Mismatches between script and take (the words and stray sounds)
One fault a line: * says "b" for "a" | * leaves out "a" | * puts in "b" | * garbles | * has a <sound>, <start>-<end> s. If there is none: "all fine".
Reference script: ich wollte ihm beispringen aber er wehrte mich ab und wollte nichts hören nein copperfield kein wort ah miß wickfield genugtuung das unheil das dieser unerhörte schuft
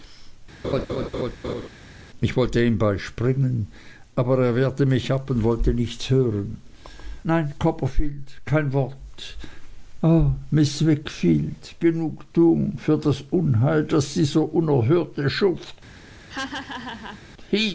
* has a laugh, 0.6-1.7 s
* puts in "für"
* has a laugh, 16.3-17.2 s